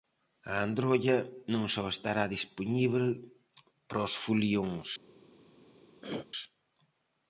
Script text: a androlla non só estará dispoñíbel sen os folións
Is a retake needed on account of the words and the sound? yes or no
yes